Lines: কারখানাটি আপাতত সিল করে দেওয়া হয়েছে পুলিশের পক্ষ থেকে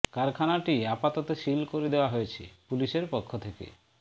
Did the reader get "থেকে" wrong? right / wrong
right